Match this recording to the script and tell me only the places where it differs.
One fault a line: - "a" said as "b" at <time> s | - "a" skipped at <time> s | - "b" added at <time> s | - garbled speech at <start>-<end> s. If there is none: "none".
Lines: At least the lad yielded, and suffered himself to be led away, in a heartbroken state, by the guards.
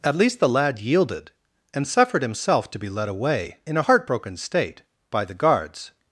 none